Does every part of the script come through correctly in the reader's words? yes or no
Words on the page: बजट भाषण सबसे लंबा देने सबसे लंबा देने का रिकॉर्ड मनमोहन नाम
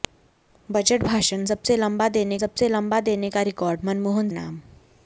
yes